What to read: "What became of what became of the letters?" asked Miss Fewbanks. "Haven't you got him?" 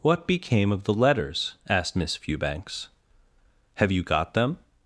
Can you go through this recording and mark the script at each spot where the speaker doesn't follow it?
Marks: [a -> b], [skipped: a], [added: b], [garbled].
"What became of [skipped: what became of] the letters?" asked Miss Fewbanks. ["Haven't -> Have] you got [him?" -> them]